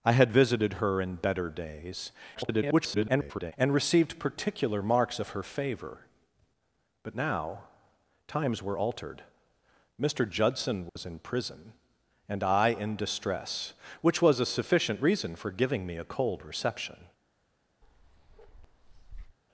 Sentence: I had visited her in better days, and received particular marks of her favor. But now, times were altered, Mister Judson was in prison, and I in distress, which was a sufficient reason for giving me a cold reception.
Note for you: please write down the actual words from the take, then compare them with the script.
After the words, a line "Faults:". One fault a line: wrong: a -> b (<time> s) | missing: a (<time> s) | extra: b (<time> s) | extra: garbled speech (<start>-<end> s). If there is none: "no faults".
I had visited her in better days, [garbled] and received particular marks of her favor. But now, times were altered, Mister Judson was in prison, and I in distress, which was a sufficient reason for giving me a cold reception.
Faults:
extra: garbled speech (2.3-3.5 s)